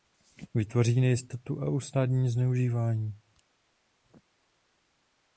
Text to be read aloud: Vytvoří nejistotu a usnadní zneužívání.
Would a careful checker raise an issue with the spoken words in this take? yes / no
no